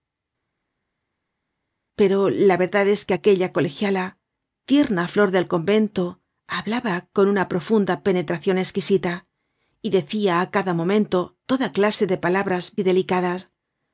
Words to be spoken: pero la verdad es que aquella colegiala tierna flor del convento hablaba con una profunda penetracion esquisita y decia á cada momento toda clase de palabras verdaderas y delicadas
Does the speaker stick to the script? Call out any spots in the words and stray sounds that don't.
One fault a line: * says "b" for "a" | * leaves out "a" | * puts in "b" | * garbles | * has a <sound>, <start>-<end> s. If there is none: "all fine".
* leaves out "verdaderas"